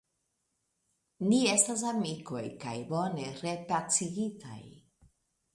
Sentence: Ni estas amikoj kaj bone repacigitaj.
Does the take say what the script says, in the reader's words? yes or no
yes